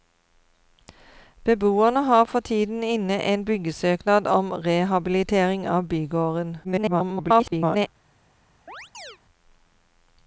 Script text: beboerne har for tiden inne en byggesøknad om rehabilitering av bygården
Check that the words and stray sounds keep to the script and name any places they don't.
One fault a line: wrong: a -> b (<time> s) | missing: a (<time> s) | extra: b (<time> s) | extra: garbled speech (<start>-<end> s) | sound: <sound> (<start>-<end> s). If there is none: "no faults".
extra: garbled speech (6.6-7.9 s)
sound: chirp (8.7-9.2 s)